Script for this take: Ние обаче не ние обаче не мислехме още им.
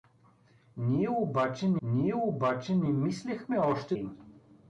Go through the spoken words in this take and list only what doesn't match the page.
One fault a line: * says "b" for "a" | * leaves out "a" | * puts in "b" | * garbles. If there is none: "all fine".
all fine